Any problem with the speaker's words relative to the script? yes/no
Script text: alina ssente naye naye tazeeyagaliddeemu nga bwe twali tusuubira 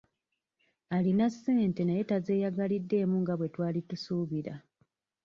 yes